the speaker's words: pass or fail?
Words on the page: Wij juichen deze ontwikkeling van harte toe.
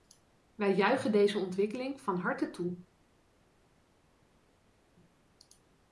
pass